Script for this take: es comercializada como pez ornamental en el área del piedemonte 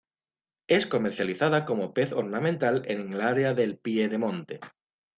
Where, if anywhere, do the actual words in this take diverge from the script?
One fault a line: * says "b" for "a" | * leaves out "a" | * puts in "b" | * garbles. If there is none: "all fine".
all fine